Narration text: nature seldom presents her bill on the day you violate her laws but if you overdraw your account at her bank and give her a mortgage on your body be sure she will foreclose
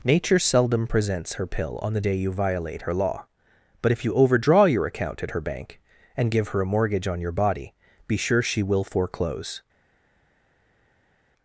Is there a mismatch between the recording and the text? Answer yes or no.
yes